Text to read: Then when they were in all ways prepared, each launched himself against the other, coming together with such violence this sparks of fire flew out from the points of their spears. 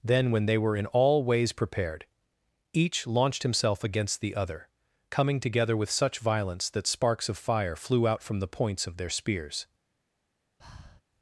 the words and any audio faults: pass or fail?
fail